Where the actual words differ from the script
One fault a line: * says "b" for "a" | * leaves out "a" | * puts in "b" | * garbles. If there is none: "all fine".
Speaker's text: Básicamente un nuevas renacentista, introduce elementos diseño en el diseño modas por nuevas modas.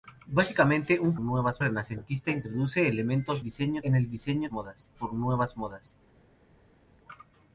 all fine